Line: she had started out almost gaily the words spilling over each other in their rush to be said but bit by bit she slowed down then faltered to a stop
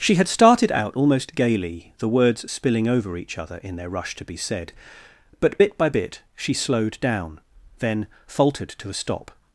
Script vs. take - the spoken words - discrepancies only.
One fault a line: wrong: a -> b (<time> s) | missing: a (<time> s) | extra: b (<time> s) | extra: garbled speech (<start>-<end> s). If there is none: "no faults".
no faults